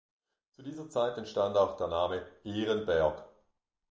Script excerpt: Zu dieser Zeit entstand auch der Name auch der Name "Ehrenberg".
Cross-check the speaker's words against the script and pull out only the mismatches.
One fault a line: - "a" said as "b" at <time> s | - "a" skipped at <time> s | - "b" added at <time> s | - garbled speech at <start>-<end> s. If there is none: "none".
- "auch der Name" skipped at 2.2 s